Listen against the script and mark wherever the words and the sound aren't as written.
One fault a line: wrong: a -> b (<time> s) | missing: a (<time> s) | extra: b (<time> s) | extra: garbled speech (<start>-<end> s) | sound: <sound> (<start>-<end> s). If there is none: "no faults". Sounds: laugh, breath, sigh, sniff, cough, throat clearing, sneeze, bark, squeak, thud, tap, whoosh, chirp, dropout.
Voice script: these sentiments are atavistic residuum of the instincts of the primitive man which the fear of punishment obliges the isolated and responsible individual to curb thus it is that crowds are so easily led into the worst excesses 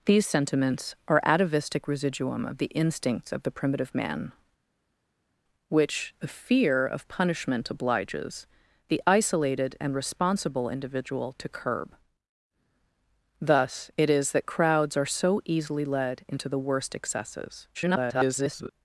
extra: garbled speech (17.7-18.7 s)